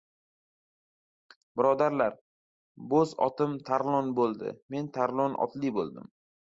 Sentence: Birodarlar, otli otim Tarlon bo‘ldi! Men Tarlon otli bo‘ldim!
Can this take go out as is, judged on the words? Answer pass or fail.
fail